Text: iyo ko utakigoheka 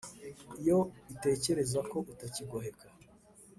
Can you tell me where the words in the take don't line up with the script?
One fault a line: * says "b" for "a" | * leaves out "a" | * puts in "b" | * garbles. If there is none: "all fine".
* puts in "itekereza"